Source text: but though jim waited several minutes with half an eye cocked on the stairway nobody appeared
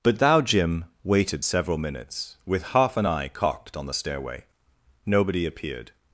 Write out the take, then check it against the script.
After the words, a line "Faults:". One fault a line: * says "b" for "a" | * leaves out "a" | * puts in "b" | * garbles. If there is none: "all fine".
but thou jim waited several minutes with half an eye cocked on the stairway nobody appeared
Faults:
* says "thou" for "though"